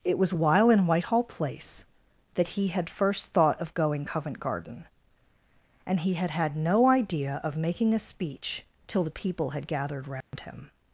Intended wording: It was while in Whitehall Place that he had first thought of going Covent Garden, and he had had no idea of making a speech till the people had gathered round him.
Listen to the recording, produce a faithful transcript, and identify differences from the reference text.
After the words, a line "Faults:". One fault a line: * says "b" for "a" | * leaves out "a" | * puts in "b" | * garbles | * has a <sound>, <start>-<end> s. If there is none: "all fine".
It was while in Whitehall Place that he had first thought of going Covent Garden, and he had had no idea of making a speech till the people had gathered round him.
Faults:
* has a dropout, 10.2-10.3 s